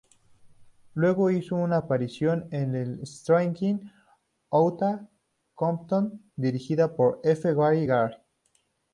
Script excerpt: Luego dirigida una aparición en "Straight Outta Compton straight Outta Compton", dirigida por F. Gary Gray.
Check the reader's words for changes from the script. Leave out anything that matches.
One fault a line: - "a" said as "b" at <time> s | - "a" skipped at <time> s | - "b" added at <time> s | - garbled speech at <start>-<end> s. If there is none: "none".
- "dirigida" said as "hizo" at 1.3 s
- "straight Outta Compton" skipped at 6.2 s